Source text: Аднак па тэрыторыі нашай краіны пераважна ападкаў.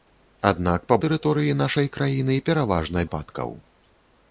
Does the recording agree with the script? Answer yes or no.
yes